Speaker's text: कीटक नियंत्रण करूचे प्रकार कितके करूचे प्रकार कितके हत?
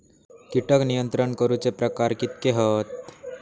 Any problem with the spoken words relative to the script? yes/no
yes